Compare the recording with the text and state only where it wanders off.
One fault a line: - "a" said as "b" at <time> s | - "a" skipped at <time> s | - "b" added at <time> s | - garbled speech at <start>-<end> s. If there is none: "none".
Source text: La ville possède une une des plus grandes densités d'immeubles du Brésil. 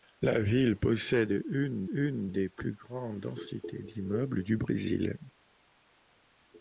none